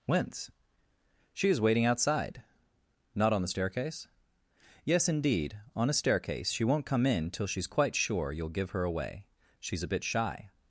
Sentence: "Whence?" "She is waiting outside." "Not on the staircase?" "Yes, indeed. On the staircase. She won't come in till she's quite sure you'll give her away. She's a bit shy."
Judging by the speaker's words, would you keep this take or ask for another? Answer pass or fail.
fail